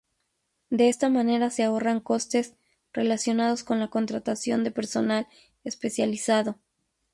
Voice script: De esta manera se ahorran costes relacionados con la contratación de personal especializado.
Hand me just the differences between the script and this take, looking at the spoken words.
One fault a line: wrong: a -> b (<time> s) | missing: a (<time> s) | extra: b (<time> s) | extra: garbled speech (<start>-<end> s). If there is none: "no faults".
no faults